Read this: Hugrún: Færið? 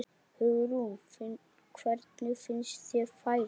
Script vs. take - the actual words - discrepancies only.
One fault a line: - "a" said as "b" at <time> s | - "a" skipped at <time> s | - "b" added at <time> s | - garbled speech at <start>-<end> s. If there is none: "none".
- "Hvernig finnst þér" added at 1.8 s